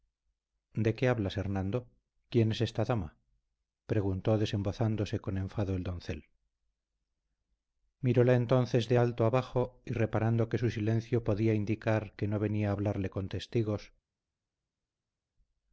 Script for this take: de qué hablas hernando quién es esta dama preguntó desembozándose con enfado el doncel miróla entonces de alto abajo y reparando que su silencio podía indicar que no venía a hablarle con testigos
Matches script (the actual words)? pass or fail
pass